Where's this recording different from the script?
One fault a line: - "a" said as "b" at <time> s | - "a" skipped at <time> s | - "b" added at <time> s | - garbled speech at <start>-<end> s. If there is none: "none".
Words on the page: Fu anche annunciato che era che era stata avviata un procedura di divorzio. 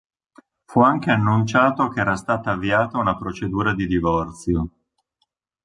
- "che era" skipped at 2.1 s
- "un" said as "una" at 3.0 s